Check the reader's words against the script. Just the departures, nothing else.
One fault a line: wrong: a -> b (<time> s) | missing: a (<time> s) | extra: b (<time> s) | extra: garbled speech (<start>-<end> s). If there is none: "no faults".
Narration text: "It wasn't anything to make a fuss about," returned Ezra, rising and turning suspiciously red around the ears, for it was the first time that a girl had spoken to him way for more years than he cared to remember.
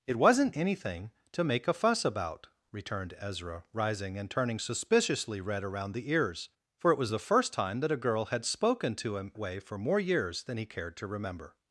no faults